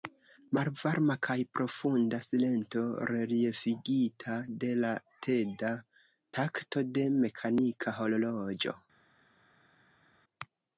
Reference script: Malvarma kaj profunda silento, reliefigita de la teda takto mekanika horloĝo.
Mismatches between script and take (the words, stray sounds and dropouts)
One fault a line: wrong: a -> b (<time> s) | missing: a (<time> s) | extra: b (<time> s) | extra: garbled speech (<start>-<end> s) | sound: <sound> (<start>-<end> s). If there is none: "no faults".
extra: de (7.0 s)